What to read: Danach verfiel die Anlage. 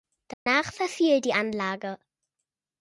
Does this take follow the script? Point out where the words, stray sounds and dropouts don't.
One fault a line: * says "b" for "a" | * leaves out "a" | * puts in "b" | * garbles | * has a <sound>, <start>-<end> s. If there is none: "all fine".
* has a dropout, 0.3-0.5 s